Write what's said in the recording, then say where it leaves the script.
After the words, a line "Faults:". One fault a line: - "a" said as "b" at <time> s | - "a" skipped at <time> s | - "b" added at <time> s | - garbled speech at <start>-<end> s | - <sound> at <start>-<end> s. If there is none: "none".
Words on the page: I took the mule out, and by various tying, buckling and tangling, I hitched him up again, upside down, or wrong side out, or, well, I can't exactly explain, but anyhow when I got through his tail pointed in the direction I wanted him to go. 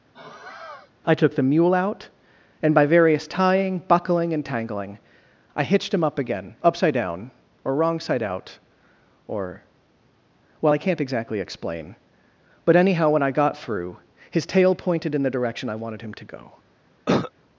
I took the mule out, and by various tying, buckling and tangling, I hitched him up again, upside down, or wrong side out, or, well, I can't exactly explain, but anyhow when I got through his tail pointed in the direction I wanted him to go.
Faults:
- sigh at 0.1-0.9 s
- cough at 17.1-17.3 s